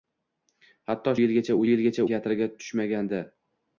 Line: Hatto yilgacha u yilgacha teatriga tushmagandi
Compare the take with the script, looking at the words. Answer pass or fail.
pass